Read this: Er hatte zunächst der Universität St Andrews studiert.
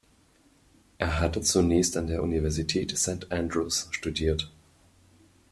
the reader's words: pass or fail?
fail